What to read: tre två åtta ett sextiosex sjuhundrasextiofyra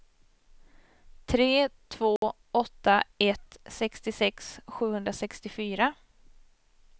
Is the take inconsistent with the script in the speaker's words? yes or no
no